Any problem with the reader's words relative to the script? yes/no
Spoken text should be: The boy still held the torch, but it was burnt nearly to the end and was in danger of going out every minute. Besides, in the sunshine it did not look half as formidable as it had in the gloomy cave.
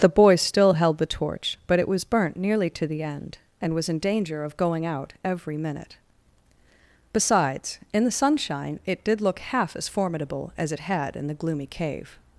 yes